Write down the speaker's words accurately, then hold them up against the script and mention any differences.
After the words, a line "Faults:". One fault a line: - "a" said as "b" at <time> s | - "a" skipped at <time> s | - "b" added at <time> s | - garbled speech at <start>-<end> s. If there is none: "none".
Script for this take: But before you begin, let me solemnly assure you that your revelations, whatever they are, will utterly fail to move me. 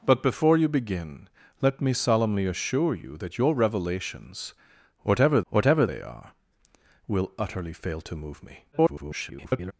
But before you begin, let me solemnly assure you that your revelations, whatever whatever they are, will utterly fail to move me. [garbled]
Faults:
- "whatever" added at 5.5 s
- garbled speech at 8.7-9.7 s